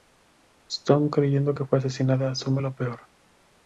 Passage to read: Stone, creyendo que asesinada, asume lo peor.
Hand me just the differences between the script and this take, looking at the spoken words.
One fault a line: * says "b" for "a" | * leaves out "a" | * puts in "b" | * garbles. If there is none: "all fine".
* puts in "fue"